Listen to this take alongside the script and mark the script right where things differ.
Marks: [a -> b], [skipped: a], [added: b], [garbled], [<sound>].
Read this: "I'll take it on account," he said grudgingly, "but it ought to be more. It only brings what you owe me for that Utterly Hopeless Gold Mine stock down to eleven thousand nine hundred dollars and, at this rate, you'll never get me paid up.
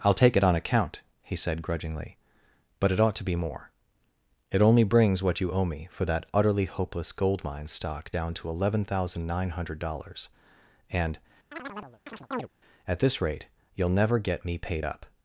"I'll take it on account," he said grudgingly, "but it ought to be more. It only brings what you owe me for that Utterly Hopeless Gold Mine stock down to eleven thousand nine hundred dollars and, [chirp] at this rate, you'll never get me paid up.